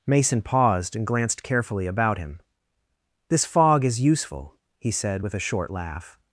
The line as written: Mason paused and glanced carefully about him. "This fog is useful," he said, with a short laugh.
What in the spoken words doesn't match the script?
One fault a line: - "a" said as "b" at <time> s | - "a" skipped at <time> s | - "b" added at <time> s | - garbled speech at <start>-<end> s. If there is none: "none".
none